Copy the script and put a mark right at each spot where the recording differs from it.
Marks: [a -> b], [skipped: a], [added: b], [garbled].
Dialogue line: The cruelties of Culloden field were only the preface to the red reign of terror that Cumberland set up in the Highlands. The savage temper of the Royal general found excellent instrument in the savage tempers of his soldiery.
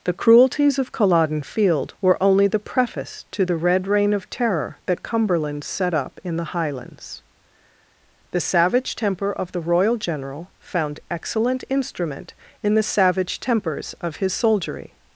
The cruelties of Culloden field were only the preface to the red reign of terror that Cumberland set up in the Highlands. The savage temper of the Royal general found excellent instrument in the savage tempers of his soldiery.